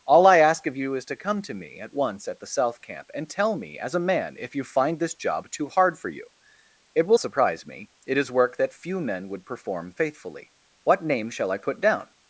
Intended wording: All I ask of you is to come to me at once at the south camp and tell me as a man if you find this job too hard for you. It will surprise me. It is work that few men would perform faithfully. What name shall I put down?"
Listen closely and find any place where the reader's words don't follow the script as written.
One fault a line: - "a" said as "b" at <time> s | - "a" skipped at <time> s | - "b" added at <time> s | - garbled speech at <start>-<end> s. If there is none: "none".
none